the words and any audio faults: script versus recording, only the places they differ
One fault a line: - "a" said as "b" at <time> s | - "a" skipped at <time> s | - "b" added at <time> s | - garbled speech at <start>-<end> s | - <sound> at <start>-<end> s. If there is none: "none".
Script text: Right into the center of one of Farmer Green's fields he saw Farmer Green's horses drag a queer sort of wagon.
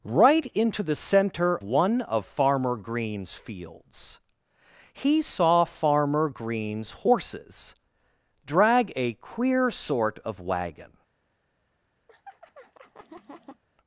- "of" skipped at 1.6 s
- laugh at 12.1-13.6 s